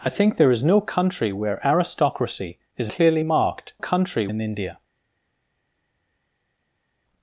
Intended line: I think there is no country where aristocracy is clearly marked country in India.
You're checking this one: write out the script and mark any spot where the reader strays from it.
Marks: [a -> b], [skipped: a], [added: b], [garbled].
I think there is no country where aristocracy is clearly marked country in India.